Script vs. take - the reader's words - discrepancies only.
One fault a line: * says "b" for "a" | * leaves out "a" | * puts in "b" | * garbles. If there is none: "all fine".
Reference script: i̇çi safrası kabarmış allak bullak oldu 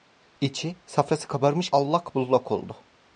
all fine